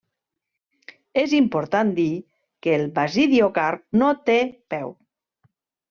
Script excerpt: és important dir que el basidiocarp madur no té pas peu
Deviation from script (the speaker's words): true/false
true